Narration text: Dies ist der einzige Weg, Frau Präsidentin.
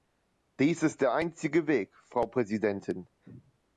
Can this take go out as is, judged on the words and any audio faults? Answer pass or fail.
pass